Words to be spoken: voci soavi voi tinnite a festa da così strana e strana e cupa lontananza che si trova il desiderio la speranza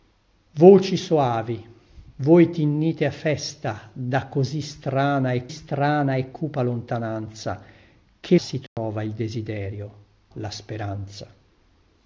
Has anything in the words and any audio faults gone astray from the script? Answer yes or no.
yes